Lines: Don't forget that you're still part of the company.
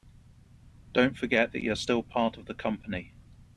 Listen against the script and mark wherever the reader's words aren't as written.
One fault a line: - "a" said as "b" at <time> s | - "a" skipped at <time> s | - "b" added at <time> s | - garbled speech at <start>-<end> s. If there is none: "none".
none